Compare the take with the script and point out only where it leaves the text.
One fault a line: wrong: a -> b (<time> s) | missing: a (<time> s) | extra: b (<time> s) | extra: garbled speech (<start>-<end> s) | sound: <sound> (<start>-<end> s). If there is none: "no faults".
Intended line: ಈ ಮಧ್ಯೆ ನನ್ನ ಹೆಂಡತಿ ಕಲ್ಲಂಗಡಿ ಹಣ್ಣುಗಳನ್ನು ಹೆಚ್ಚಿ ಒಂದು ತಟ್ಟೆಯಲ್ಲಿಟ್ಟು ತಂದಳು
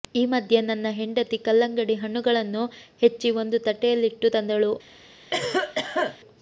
sound: cough (5.3-6.2 s)